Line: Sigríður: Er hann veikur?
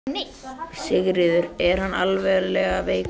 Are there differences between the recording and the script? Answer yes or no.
yes